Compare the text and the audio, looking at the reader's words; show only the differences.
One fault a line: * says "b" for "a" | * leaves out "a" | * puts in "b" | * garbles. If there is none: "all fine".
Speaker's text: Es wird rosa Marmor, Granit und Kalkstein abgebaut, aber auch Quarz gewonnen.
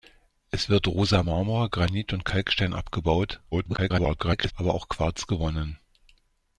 * garbles